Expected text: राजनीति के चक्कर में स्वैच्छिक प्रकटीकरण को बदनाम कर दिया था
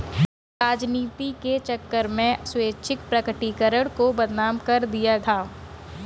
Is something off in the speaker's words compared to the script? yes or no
no